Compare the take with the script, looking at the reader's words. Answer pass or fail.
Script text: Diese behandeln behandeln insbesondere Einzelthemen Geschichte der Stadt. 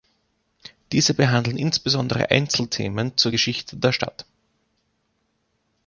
fail